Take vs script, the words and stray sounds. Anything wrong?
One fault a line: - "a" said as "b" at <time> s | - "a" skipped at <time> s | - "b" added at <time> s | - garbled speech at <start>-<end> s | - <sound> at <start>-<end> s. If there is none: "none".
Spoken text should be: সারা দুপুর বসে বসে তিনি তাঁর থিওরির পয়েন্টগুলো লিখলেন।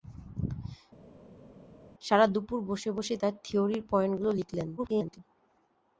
- "তিনি" skipped at 3.1 s
- garbled speech at 4.8-5.2 s